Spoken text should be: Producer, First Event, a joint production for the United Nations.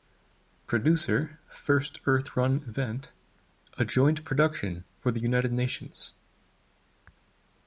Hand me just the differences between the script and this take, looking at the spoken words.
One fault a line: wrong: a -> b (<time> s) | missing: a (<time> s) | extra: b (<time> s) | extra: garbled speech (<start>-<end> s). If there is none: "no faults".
extra: Earth Run (2.0 s)